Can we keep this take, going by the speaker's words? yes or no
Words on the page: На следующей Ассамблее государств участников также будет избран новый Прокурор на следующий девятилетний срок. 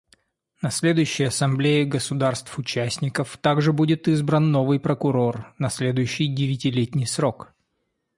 yes